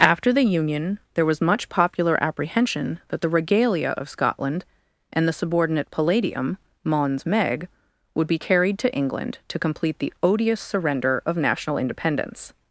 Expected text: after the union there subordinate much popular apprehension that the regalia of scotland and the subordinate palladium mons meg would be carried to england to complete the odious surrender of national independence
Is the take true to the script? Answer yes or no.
no